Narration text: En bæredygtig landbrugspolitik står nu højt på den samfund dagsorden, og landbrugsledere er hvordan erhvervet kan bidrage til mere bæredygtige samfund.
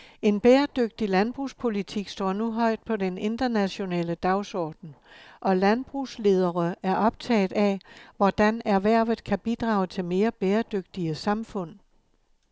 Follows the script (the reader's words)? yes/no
no